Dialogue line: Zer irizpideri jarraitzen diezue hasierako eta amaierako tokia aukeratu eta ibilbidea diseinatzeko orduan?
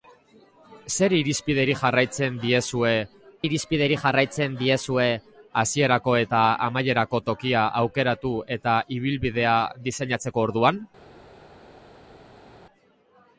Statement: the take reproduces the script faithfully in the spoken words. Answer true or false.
false